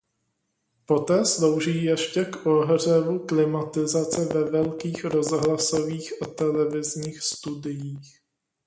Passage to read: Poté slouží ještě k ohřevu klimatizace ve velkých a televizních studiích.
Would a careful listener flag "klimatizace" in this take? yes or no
no